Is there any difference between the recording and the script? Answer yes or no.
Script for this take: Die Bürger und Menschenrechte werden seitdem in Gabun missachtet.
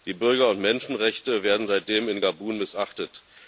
no